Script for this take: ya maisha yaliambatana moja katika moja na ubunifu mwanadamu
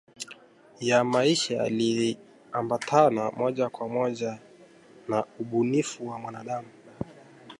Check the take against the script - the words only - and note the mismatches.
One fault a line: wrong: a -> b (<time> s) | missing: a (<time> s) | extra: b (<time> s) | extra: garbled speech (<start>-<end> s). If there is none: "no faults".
wrong: katika -> kwa (3.7 s)
extra: wa (6.1 s)